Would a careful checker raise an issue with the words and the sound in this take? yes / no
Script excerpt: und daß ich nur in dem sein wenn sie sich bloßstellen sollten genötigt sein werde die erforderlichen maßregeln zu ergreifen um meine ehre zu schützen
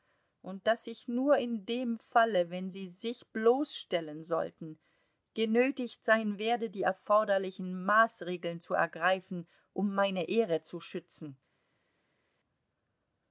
yes